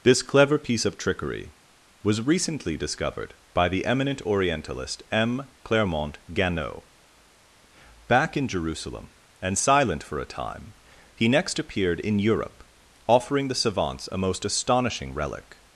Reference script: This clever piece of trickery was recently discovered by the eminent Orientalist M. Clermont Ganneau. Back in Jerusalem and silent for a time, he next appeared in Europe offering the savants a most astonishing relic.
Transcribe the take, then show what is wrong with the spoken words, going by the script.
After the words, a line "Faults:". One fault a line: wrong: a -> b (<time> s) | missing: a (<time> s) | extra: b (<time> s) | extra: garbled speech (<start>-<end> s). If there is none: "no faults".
This clever piece of trickery was recently discovered by the eminent Orientalist M. Clermont Ganneau. Back in Jerusalem and silent for a time, he next appeared in Europe offering the savants a most astonishing relic.
Faults:
no faults